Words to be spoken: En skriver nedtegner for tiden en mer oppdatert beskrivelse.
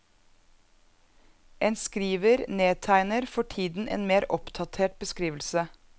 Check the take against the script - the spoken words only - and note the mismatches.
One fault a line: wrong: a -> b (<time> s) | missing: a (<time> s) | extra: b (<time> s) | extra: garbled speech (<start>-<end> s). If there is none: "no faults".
no faults